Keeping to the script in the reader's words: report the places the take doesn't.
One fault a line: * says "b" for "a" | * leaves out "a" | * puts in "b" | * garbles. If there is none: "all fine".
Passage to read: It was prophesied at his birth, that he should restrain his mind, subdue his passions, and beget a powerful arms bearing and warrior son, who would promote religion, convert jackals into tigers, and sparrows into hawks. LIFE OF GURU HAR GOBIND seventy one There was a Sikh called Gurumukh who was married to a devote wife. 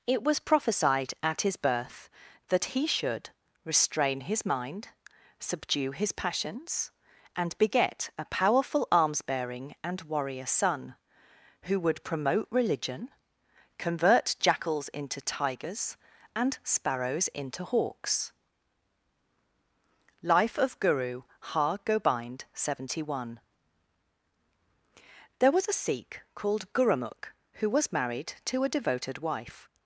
* says "devoted" for "devote"